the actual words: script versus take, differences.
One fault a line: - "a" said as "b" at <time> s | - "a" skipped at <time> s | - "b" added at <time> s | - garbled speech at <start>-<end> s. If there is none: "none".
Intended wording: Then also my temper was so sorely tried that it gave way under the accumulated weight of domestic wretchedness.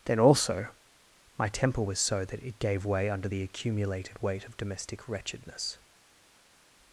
- "sorely tried" skipped at 2.2 s